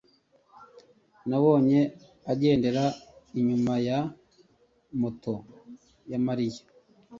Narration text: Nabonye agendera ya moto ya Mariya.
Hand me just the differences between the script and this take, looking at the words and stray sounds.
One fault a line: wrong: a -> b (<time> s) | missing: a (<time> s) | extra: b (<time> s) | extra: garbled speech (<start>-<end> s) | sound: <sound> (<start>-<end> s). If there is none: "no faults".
extra: inyuma (3.4 s)